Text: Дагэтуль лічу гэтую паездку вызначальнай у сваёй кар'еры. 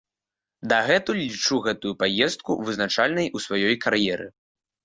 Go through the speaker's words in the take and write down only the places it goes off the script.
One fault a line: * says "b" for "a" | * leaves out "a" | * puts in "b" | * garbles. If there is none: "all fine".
all fine